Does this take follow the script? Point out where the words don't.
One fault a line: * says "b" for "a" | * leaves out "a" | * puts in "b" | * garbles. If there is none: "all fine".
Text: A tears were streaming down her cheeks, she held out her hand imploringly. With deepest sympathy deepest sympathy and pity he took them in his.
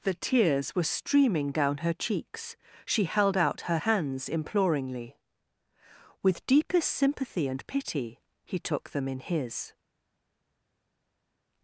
* says "The" for "A"
* says "hands" for "hand"
* leaves out "deepest sympathy"